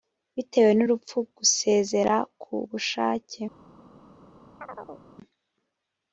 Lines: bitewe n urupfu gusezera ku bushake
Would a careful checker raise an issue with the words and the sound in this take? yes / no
yes